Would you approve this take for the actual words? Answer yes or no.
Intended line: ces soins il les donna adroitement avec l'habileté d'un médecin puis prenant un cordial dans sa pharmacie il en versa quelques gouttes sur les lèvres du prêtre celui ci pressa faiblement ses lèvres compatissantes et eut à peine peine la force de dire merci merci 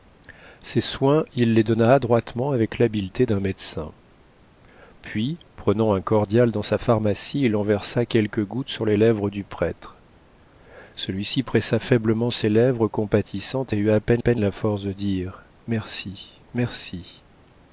yes